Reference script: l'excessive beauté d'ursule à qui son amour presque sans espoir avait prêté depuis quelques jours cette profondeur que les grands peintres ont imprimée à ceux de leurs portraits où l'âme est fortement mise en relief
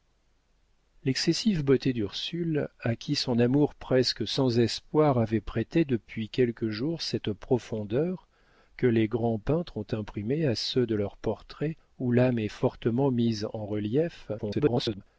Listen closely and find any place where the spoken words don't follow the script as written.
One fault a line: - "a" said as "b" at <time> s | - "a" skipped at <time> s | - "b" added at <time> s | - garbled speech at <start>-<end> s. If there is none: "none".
- garbled speech at 14.4-15.0 s